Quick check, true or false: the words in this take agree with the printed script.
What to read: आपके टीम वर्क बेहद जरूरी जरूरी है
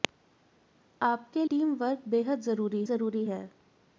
true